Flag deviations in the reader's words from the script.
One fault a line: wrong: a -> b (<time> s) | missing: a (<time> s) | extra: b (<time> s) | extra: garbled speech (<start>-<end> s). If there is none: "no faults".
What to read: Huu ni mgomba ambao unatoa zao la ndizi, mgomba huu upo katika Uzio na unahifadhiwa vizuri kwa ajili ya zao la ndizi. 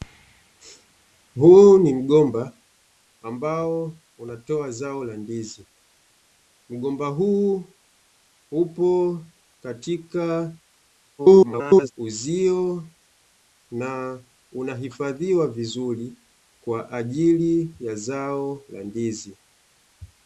extra: garbled speech (11.2-11.9 s)